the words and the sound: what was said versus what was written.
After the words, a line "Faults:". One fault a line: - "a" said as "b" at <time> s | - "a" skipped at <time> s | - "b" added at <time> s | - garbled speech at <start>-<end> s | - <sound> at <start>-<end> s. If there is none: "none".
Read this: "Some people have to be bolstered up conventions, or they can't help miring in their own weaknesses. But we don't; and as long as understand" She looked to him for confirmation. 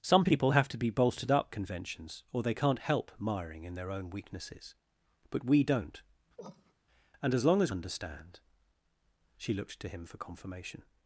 "Some people have to be bolstered up conventions, or they can't help miring in their own weaknesses. But we don't; and as long as understand" She looked to him for confirmation.
Faults:
- cough at 6.4-6.7 s